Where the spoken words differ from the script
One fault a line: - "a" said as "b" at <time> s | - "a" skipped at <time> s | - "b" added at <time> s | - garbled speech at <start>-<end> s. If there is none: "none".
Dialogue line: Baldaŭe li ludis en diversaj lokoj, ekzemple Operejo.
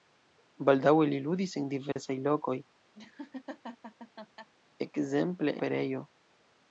none